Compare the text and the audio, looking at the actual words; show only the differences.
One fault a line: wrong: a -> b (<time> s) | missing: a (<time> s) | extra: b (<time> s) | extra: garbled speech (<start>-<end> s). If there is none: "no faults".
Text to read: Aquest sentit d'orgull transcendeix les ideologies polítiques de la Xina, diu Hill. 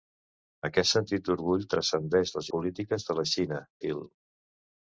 missing: ideologies (2.5 s)
missing: diu (3.6 s)